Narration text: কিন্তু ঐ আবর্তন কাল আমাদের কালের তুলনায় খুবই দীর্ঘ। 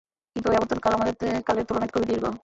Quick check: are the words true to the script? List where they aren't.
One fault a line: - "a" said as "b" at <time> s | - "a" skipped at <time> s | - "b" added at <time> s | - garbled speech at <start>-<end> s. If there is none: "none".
none